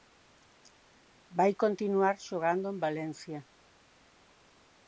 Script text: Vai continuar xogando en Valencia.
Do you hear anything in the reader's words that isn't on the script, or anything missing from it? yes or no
no